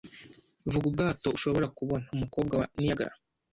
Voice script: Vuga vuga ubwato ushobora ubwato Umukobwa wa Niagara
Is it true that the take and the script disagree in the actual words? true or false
true